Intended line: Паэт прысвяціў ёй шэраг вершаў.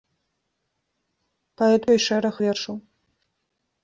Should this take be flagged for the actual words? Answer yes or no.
yes